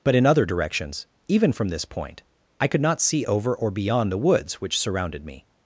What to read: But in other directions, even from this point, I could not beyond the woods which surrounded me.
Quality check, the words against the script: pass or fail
fail